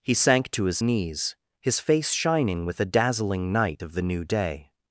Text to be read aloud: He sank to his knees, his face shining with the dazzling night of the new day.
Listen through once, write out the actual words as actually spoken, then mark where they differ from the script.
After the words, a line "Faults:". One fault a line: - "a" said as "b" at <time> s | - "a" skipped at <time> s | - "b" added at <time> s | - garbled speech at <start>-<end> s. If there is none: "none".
He sank to his knees, his face shining with the dazzling night of the new day.
Faults:
none